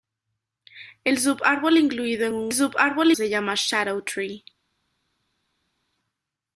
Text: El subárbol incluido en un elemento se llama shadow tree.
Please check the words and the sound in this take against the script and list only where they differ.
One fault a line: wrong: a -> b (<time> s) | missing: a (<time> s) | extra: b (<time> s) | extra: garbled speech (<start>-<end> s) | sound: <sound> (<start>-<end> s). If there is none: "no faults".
wrong: elemento -> subárbol (2.5 s)